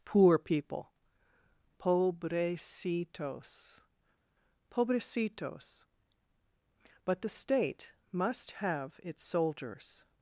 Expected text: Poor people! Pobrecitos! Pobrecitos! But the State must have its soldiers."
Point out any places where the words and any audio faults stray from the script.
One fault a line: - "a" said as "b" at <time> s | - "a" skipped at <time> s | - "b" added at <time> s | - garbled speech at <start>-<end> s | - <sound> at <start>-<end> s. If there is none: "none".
none